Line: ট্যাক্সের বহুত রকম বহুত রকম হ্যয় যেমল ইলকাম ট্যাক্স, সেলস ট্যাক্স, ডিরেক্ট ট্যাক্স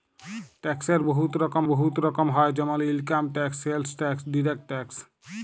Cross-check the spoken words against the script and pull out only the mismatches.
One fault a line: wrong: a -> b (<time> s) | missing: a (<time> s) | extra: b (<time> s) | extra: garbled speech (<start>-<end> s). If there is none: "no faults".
no faults